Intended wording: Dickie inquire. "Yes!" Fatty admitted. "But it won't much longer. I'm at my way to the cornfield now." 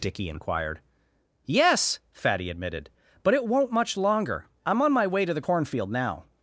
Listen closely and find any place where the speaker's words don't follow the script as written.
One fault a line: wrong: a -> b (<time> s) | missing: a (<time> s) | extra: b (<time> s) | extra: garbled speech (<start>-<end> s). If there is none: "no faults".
wrong: inquire -> inquired (0.3 s)
wrong: at -> on (4.8 s)